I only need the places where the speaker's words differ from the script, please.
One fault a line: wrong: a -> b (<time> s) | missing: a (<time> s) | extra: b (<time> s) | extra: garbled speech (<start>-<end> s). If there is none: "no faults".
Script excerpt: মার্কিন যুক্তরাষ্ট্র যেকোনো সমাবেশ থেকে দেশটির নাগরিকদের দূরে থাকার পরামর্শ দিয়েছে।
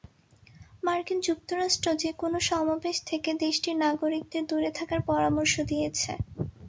no faults